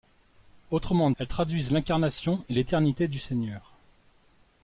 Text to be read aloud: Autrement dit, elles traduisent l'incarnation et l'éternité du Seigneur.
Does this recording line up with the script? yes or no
no